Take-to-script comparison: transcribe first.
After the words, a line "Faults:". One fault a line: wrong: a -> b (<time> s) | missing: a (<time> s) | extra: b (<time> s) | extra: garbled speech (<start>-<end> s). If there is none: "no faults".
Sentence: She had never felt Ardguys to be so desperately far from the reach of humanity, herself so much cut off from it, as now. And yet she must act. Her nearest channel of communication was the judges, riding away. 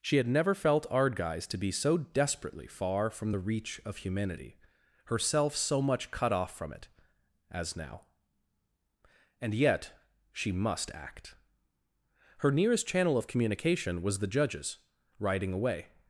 She had never felt Ardguys to be so desperately far from the reach of humanity, herself so much cut off from it, as now. And yet she must act. Her nearest channel of communication was the judges, riding away.
Faults:
no faults